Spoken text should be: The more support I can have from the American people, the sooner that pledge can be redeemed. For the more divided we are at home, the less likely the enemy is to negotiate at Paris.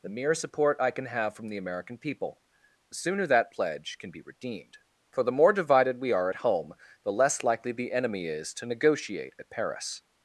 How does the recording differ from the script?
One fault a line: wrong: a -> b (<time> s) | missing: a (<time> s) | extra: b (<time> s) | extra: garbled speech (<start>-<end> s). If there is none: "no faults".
wrong: more -> mere (0.1 s)